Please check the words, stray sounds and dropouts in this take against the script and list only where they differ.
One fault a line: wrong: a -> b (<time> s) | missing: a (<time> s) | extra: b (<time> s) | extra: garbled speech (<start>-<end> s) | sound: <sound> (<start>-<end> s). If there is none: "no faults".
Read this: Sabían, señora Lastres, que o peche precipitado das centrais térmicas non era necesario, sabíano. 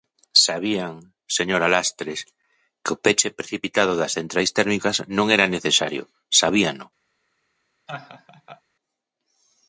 sound: laugh (7.9-8.6 s)